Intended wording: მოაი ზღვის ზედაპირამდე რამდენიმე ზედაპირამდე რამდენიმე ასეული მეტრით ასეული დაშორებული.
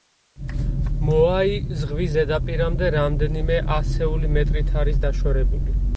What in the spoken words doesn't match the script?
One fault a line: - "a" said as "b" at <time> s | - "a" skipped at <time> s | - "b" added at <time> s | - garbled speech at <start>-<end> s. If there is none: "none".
- "ზედაპირამდე რამდენიმე" skipped at 3.6 s
- "ასეული" said as "არის" at 4.8 s